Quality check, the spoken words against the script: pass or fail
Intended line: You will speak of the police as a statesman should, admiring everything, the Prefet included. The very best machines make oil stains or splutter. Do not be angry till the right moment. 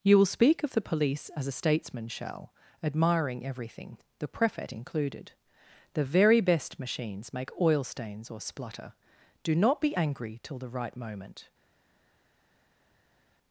fail